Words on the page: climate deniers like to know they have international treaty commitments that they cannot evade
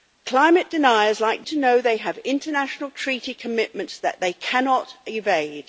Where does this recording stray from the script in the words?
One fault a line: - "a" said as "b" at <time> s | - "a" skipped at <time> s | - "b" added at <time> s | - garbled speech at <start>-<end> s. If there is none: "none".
none